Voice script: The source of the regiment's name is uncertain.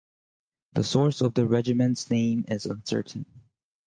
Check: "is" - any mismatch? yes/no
no